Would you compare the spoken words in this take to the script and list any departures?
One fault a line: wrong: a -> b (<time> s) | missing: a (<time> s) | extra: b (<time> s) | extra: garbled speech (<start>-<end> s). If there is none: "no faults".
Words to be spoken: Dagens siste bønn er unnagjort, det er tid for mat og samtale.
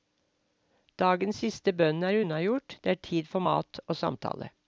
no faults